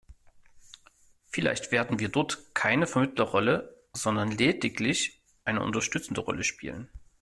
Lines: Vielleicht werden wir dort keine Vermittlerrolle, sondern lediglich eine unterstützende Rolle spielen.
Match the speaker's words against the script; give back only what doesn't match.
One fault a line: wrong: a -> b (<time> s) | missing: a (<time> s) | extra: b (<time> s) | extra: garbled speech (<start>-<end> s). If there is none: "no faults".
no faults